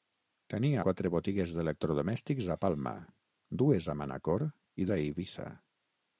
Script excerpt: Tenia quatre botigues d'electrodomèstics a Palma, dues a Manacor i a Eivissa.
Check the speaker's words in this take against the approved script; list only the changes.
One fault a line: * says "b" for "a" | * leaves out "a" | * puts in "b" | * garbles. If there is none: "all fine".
all fine